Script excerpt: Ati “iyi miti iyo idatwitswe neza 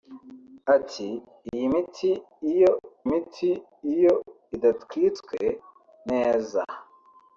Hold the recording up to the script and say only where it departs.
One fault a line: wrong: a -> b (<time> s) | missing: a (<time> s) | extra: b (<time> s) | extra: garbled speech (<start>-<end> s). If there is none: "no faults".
extra: miti iyo (3.1 s)